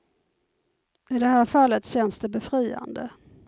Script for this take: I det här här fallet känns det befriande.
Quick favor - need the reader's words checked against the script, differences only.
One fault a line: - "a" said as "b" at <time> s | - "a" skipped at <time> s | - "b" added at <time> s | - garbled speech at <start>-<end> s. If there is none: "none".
- "här" skipped at 1.4 s